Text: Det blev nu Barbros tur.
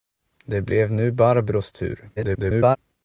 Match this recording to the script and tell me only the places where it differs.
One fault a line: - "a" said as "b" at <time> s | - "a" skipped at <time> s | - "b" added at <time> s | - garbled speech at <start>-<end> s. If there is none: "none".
- garbled speech at 2.2-2.8 s